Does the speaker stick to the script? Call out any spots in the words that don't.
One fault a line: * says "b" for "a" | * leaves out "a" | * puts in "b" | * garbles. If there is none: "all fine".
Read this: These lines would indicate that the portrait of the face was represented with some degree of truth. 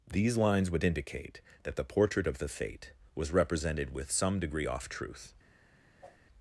* says "fate" for "face"
* says "off" for "of"